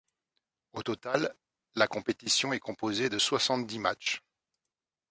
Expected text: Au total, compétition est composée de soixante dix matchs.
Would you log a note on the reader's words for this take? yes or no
yes